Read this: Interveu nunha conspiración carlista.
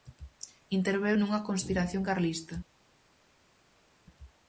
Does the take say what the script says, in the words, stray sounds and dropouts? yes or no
yes